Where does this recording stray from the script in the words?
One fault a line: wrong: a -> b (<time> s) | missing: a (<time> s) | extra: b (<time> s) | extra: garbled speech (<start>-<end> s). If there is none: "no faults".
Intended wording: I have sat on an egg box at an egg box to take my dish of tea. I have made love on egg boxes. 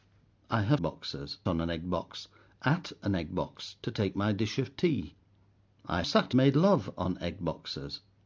wrong: sat -> boxes (0.8 s)
wrong: have -> sat (6.1 s)